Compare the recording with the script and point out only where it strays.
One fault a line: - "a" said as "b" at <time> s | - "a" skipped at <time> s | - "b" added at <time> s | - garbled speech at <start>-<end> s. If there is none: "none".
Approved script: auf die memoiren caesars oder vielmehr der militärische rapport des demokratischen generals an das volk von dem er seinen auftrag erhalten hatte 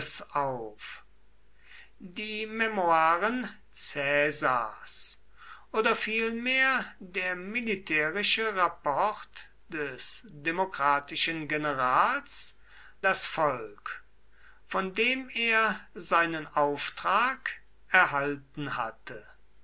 - "an" skipped at 12.6 s